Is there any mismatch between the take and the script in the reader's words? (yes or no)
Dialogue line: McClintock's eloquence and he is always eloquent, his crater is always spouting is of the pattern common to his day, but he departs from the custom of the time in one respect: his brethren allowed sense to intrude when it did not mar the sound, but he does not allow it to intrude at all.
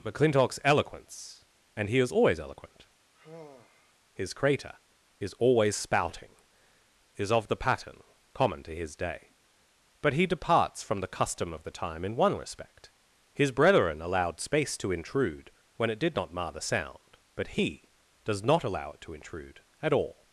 yes